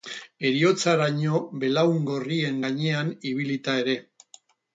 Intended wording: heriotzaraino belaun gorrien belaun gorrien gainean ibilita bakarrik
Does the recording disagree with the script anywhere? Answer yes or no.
yes